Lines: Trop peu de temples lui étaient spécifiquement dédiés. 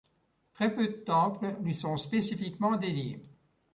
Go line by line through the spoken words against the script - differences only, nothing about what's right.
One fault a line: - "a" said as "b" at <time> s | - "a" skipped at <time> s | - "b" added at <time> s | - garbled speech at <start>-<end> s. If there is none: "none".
- "Trop" said as "Très" at 0.5 s
- "étaient" said as "sont" at 1.8 s